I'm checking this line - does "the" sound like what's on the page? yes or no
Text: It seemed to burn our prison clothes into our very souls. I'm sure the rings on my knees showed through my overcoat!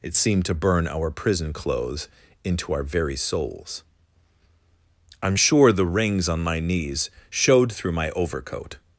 yes